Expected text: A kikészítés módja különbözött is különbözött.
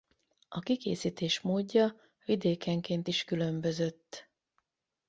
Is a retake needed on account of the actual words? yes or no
yes